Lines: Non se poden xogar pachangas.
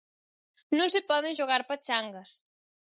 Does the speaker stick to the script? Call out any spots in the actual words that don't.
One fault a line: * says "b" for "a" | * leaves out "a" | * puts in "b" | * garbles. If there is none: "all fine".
all fine